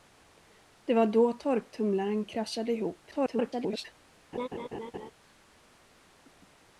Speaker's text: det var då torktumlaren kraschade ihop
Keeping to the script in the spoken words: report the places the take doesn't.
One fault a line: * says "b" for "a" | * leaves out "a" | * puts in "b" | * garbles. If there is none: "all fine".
* garbles